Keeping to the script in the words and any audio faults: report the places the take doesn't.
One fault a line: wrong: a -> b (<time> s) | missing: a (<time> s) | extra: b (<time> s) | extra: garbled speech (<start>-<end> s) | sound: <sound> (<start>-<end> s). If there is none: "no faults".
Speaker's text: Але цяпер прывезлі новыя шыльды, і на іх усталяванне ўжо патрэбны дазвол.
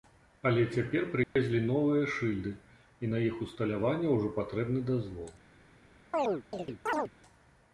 sound: dropout (1.2-1.4 s)
sound: chirp (6.1-7.1 s)